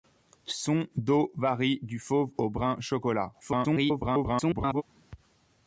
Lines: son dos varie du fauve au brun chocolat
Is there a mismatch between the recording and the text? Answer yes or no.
yes